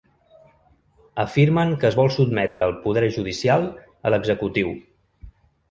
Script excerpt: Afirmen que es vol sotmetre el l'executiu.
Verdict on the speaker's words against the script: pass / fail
fail